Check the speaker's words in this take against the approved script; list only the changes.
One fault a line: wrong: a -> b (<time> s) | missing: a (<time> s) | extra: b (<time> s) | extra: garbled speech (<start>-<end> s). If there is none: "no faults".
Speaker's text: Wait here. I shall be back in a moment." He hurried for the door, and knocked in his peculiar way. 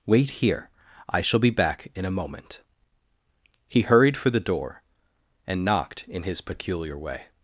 no faults